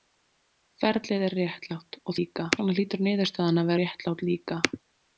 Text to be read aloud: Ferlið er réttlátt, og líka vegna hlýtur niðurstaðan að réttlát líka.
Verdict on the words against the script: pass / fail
pass